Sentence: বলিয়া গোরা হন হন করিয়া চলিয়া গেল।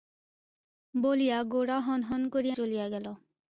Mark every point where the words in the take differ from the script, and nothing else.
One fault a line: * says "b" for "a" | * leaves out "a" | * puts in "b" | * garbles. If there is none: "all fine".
all fine